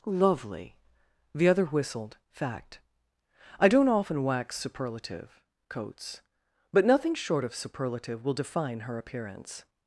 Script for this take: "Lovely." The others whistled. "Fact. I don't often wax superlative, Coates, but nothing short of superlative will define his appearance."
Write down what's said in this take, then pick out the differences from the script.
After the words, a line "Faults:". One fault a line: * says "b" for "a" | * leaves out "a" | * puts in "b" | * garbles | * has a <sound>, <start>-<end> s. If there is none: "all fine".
"Lovely." The other whistled. "Fact. I don't often wax superlative, Coates, but nothing short of superlative will define her appearance."
Faults:
* says "other" for "others"
* says "her" for "his"